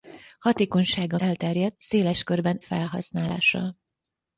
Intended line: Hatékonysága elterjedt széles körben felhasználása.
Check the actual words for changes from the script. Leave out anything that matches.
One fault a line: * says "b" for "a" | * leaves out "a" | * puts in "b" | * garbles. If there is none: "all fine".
all fine